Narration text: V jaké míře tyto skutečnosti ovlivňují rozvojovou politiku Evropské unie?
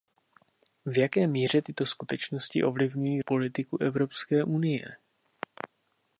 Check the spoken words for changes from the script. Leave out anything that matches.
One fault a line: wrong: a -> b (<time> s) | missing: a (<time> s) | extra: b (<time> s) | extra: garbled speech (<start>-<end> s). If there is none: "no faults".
missing: rozvojovou (3.2 s)